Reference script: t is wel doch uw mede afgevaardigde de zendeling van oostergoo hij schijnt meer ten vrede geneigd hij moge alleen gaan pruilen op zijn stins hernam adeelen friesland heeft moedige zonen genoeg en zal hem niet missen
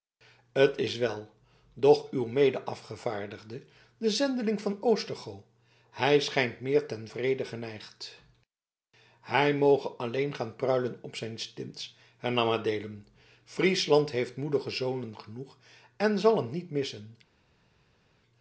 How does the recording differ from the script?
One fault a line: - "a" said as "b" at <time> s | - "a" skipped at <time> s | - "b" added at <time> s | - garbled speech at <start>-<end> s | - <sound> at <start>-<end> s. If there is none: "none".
none